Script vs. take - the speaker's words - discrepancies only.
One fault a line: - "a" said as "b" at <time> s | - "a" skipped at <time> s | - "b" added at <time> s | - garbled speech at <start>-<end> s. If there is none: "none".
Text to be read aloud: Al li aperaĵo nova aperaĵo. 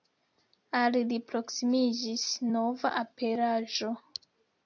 - "aperaĵo" said as "proksimiĝis" at 1.3 s